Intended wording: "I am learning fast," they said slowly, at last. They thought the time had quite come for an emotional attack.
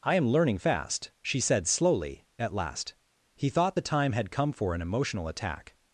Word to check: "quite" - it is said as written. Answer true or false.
false